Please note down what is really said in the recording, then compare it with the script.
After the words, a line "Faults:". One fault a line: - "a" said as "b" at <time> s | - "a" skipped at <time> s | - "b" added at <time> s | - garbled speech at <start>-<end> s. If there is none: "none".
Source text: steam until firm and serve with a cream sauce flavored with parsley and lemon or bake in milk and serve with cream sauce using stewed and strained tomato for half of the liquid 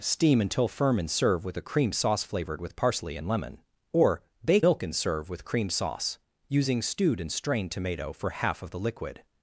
steam until firm and serve with a cream sauce flavored with parsley and lemon or bake milk and serve with cream sauce using stewed and strained tomato for half of the liquid
Faults:
- "in" skipped at 4.7 s